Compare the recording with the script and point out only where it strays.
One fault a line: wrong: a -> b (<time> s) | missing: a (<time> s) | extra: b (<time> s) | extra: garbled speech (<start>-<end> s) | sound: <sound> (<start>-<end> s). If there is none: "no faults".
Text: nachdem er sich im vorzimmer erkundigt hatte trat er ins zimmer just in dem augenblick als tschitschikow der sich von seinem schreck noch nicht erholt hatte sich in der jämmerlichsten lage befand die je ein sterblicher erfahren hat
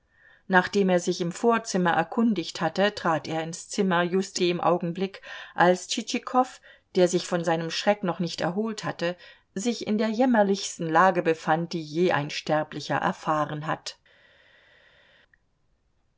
missing: in (4.4 s)